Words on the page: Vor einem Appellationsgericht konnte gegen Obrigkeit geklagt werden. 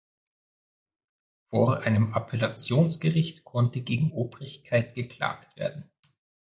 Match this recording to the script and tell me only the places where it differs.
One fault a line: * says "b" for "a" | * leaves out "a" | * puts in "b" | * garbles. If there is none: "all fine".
all fine